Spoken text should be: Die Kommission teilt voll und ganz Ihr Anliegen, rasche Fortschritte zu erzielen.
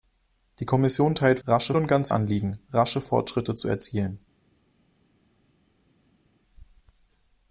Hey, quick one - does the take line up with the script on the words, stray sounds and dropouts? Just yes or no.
no